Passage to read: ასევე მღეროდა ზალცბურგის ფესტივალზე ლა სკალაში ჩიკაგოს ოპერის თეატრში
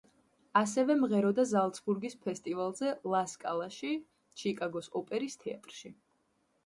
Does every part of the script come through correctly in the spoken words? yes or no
yes